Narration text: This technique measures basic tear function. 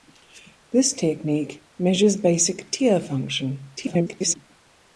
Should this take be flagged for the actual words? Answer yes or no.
yes